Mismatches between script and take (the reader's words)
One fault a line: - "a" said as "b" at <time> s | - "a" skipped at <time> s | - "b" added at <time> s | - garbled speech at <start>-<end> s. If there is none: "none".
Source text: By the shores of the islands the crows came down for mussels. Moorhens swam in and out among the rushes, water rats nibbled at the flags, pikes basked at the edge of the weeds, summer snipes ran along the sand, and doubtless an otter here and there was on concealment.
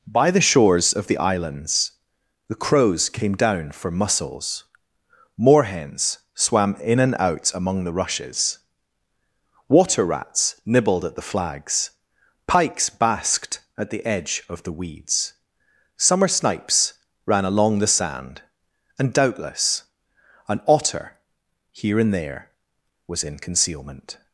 - "on" said as "in" at 23.2 s